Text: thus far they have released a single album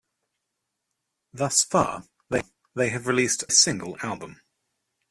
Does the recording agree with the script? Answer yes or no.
yes